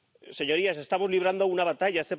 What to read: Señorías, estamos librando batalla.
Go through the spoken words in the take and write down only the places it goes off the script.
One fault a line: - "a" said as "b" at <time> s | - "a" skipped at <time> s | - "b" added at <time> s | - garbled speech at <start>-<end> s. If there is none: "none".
- "una" added at 1.4 s